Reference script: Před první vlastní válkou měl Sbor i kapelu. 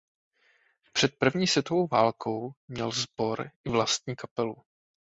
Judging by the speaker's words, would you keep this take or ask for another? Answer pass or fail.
fail